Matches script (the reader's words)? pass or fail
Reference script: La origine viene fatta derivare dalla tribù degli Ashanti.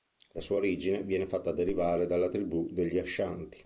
fail